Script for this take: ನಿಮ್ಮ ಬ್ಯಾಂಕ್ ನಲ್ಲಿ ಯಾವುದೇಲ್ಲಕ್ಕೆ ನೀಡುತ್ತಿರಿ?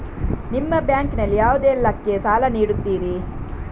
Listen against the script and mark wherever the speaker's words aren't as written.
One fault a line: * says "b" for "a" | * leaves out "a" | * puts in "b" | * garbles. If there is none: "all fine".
* puts in "ಸಾಲ"